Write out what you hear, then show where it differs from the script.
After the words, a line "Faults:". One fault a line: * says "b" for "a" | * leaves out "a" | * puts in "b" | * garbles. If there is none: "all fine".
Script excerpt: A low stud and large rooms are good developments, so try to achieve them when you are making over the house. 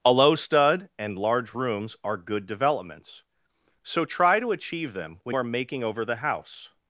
A low stud and large rooms are good developments, so try to achieve them when are making over the house.
Faults:
* leaves out "you"